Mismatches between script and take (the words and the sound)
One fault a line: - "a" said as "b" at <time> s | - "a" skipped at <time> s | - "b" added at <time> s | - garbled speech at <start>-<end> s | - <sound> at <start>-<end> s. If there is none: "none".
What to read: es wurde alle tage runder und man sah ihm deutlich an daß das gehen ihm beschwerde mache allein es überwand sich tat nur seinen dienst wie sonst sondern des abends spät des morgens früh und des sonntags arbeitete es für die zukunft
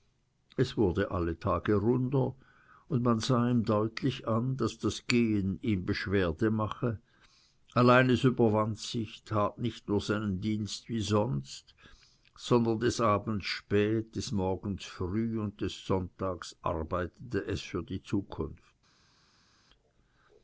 - "nicht" added at 9.6 s